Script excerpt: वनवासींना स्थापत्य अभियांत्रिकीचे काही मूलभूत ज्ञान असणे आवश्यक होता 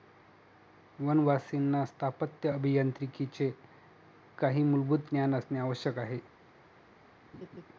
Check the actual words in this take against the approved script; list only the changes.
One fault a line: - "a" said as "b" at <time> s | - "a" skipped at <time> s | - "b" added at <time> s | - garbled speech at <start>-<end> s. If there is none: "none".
- "होता" said as "आहे" at 6.0 s